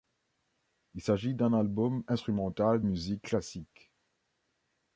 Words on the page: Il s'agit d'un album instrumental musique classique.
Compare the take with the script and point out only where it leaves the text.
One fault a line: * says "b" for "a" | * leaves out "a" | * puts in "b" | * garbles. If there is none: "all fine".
all fine